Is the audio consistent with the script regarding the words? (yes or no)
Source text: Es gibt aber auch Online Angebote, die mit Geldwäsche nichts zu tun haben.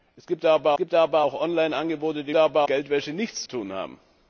no